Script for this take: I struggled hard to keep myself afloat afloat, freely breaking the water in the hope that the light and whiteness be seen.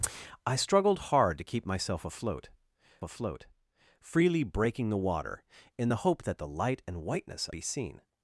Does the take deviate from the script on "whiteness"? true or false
false